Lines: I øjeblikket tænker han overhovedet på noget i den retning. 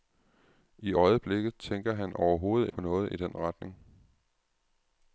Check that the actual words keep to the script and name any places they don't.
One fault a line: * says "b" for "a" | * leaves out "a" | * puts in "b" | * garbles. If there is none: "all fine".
all fine